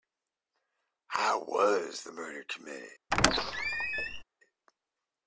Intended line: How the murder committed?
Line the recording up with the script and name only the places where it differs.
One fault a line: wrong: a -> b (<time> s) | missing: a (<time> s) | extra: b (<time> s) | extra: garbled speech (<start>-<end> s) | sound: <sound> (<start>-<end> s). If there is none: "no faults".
extra: was (1.4 s)
sound: squeak (3.1-4.2 s)